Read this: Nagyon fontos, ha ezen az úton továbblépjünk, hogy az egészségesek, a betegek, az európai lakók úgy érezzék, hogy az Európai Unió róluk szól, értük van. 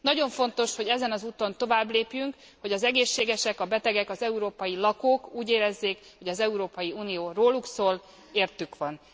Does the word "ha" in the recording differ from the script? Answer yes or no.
yes